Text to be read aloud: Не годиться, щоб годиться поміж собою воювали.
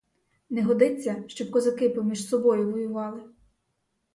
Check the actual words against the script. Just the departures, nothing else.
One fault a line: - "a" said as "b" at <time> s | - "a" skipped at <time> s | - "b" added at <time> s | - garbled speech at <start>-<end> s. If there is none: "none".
- "годиться" said as "козаки" at 1.5 s